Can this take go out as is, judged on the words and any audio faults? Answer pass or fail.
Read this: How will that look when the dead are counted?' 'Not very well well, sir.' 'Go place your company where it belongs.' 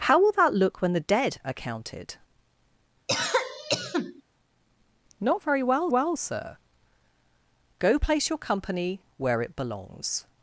fail